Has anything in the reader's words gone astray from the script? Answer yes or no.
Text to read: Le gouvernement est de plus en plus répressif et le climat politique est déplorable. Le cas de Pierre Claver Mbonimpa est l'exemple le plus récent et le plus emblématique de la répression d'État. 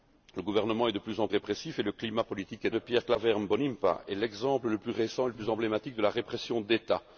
yes